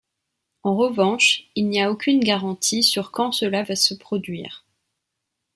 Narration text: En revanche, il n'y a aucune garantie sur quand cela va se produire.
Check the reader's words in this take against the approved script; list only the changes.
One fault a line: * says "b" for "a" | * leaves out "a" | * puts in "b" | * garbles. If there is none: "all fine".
all fine